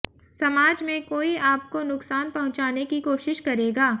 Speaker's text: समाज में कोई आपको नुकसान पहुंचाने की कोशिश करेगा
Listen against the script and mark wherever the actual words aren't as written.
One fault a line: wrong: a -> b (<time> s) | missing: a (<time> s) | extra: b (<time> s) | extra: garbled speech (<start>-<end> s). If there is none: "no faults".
no faults